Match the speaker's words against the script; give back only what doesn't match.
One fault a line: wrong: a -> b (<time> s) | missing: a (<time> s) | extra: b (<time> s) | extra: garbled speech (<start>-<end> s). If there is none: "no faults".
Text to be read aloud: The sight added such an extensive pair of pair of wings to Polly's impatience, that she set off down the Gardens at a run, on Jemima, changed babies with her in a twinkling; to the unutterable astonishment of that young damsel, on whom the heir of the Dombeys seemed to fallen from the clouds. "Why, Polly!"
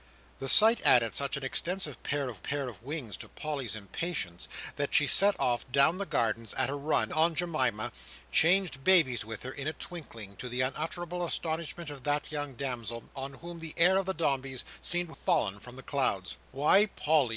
no faults